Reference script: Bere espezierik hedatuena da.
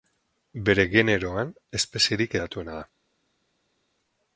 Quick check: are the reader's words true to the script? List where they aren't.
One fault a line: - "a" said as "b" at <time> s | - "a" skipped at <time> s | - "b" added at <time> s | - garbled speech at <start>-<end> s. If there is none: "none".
- "generoan" added at 0.9 s